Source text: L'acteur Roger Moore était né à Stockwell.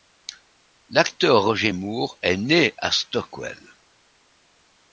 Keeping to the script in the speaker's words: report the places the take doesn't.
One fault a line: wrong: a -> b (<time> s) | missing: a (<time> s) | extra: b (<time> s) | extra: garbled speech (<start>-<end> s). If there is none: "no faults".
wrong: était -> est (2.2 s)